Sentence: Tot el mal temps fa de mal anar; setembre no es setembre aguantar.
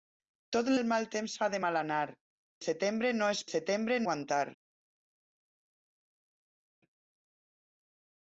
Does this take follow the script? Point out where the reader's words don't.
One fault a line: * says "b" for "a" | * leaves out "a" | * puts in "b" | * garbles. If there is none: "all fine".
all fine